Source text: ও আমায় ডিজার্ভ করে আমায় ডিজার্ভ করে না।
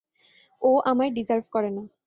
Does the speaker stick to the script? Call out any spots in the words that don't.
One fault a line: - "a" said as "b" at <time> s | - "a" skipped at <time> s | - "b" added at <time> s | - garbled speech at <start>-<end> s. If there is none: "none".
- "আমায় ডিজার্ভ করে" skipped at 1.7 s